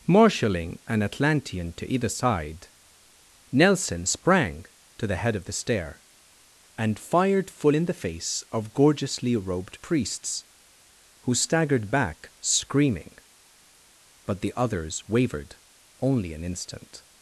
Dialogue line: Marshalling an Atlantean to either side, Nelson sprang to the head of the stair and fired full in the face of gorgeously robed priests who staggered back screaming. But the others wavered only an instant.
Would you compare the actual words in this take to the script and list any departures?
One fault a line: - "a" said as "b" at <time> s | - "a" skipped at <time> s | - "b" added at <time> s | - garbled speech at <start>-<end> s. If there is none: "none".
none